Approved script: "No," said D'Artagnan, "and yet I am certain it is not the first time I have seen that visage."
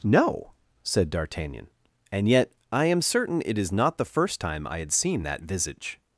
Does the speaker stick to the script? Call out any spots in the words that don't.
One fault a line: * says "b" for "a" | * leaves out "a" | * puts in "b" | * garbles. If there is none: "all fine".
* says "had" for "have"